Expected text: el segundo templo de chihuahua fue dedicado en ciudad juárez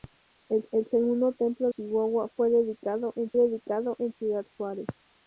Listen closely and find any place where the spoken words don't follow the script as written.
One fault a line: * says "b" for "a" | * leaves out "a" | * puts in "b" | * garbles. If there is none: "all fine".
* puts in "el"
* leaves out "de"
* puts in "dedicado en"